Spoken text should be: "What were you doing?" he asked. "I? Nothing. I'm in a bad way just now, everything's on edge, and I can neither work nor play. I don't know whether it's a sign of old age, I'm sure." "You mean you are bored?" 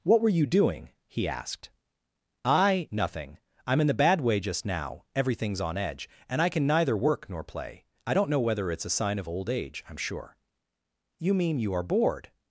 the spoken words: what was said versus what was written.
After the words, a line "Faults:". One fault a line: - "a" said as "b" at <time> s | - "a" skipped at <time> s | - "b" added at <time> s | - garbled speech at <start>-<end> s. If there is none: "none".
"What were you doing?" he asked. "I? Nothing. I'm in the bad way just now, everything's on edge, and I can neither work nor play. I don't know whether it's a sign of old age, I'm sure." "You mean you are bored?"
Faults:
- "a" said as "the" at 3.9 s